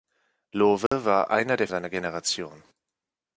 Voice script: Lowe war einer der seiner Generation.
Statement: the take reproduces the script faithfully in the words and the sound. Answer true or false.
false